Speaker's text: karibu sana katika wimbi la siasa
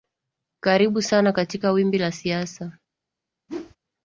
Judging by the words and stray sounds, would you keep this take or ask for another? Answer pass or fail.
fail